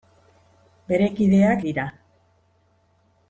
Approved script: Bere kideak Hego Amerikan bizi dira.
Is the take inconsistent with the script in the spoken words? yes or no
yes